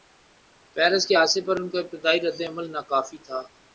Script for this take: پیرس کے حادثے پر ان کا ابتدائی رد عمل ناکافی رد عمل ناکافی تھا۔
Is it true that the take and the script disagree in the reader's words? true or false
true